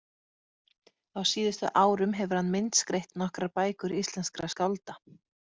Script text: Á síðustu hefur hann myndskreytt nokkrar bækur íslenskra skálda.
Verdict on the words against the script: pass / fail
fail